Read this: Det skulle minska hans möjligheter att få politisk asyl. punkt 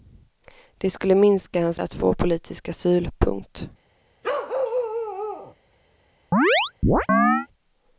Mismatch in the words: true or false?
true